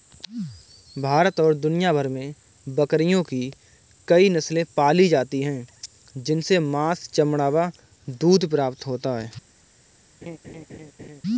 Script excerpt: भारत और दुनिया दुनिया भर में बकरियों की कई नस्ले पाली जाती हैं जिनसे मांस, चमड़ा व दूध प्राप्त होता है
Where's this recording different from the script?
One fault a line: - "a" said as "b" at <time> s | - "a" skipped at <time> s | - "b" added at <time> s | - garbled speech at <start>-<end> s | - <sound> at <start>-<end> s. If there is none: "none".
- "दुनिया" skipped at 1.9 s
- laugh at 10.2-11.2 s